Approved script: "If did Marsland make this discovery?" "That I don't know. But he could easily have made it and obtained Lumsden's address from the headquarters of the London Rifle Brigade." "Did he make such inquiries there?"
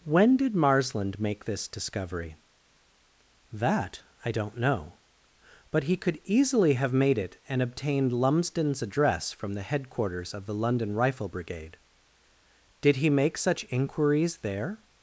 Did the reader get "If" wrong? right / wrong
wrong